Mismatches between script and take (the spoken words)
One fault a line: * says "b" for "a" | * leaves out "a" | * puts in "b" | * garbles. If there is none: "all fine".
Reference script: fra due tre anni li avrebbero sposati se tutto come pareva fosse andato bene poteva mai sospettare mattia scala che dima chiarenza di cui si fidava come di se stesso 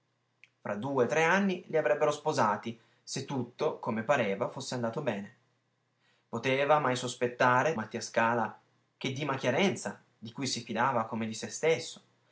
all fine